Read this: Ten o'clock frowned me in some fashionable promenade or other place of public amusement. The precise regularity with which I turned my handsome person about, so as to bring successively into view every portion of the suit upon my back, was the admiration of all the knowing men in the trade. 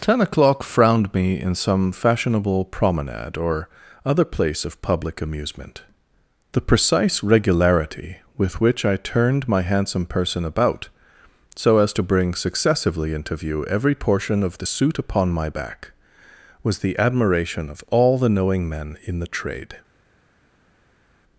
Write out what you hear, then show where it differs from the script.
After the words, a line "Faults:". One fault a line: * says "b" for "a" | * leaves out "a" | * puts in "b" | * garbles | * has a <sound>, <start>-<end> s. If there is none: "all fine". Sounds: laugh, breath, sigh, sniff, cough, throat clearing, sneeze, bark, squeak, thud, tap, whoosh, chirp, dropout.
Ten o'clock frowned me in some fashionable promenade or other place of public amusement. The precise regularity with which I turned my handsome person about, so as to bring successively into view every portion of the suit upon my back, was the admiration of all the knowing men in the trade.
Faults:
all fine